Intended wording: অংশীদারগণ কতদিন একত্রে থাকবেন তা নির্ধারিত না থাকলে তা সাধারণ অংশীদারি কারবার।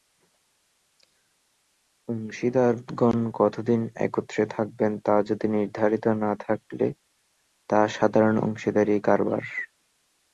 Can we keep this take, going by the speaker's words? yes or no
no